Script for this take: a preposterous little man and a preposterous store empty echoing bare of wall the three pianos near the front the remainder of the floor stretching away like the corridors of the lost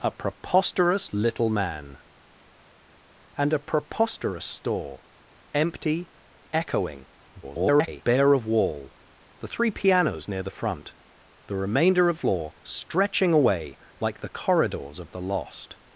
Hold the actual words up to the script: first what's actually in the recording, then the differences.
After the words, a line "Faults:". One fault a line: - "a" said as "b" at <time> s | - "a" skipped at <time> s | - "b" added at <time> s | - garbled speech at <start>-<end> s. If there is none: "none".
a preposterous little man and a preposterous store empty echoing [garbled] bare of wall the three pianos near the front the remainder of floor stretching away like the corridors of the lost
Faults:
- garbled speech at 7.4-8.0 s
- "the" skipped at 12.2 s